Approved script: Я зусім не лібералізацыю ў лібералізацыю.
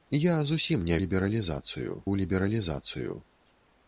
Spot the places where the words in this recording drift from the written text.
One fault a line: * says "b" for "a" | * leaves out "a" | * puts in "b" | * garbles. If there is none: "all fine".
all fine